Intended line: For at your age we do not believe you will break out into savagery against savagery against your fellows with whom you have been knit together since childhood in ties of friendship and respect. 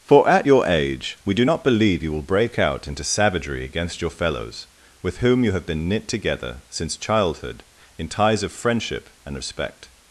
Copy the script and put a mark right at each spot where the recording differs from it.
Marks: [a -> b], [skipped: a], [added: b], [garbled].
For at your age we do not believe you will break out into savagery against [skipped: savagery against] your fellows with whom you have been knit together since childhood in ties of friendship and respect.